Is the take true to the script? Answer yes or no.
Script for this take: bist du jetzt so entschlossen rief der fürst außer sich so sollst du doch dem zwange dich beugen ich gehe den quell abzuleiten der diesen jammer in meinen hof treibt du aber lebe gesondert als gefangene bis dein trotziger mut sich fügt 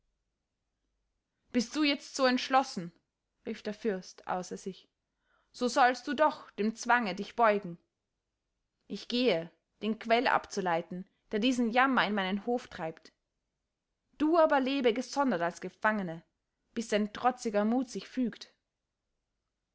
yes